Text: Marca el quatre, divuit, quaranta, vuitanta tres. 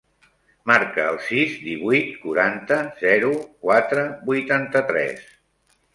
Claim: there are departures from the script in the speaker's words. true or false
true